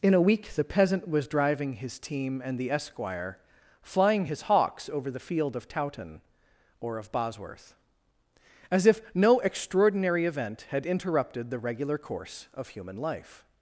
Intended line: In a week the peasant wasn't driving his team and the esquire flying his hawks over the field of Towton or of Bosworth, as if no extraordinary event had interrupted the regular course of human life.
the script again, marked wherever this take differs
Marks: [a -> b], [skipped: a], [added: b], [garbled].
In a week the peasant [wasn't -> was] driving his team and the esquire flying his hawks over the field of Towton or of Bosworth, as if no extraordinary event had interrupted the regular course of human life.